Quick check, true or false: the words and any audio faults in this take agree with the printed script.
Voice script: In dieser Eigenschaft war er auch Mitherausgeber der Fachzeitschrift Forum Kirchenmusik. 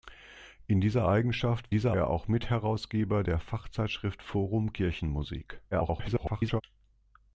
false